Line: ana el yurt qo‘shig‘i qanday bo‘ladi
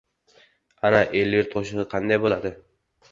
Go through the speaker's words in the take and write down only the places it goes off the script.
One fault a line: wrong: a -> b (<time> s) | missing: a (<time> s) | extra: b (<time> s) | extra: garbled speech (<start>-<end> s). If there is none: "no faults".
no faults